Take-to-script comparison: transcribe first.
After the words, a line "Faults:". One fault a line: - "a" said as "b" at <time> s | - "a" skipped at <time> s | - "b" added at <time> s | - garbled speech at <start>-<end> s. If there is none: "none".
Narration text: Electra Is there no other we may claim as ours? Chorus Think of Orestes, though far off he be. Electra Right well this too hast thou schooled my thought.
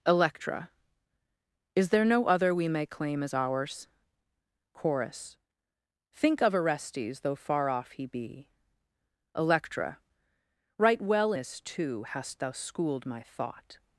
Electra Is there no other we may claim as ours? Chorus Think of Orestes, though far off he be. Electra Right well this too hast thou schooled my thought.
Faults:
none